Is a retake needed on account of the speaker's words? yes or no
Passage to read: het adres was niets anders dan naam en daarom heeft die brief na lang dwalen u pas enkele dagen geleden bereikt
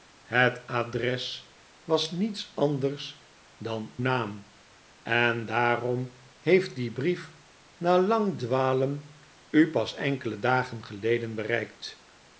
no